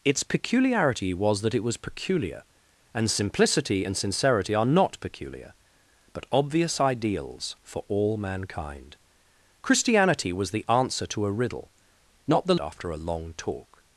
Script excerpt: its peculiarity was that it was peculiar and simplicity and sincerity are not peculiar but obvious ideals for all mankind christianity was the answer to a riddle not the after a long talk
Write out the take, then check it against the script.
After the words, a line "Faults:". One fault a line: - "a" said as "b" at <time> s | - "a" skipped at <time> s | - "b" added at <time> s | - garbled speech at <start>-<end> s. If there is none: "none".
its peculiarity was that it was peculiar and simplicity and sincerity are not peculiar but obvious ideals for all mankind christianity was the answer to a riddle not the after a long talk
Faults:
none